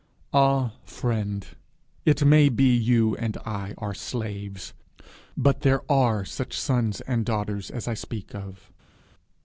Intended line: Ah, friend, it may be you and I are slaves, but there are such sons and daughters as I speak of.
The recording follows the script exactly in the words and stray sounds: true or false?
true